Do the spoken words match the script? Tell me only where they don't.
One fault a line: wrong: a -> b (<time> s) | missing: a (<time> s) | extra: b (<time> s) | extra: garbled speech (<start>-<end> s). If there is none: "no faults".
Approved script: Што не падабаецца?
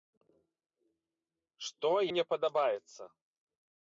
no faults